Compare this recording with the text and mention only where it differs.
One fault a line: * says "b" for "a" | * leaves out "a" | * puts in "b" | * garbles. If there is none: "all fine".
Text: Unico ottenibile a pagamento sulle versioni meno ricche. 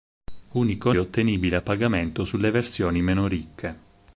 all fine